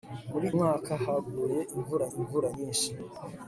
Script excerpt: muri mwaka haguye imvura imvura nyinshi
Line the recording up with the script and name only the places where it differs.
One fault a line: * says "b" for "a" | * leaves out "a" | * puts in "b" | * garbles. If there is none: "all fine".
all fine